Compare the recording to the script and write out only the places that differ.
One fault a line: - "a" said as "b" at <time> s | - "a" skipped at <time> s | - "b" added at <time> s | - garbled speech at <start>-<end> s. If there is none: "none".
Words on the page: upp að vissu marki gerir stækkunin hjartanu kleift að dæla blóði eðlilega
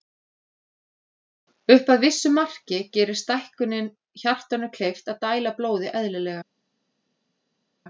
none